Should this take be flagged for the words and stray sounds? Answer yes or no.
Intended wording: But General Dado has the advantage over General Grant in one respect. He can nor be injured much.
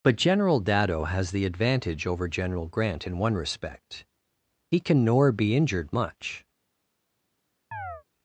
yes